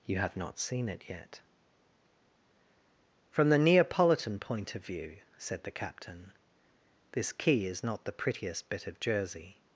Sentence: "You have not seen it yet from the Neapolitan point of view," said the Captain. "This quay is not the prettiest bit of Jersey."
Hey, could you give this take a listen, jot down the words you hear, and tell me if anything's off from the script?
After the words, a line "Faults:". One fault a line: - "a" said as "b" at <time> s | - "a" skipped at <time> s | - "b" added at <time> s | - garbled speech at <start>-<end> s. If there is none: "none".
"You have not seen it yet from the Neapolitan point of view," said the Captain. "This quay is not the prettiest bit of Jersey."
Faults:
none